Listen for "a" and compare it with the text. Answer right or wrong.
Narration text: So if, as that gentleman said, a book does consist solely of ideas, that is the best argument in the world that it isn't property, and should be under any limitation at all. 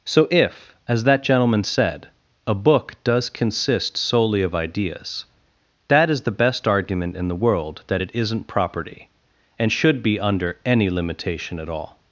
right